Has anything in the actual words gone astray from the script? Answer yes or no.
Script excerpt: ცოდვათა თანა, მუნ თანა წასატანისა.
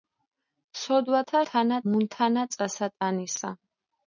no